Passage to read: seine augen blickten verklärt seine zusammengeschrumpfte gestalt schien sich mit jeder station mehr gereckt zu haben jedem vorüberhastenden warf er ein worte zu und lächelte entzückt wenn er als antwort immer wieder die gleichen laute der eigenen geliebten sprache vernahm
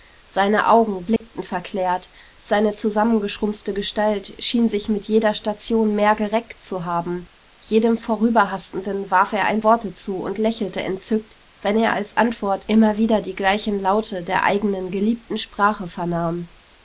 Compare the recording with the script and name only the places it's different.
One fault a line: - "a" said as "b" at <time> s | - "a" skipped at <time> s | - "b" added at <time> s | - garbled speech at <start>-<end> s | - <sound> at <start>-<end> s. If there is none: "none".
- dropout at 1.2-1.2 s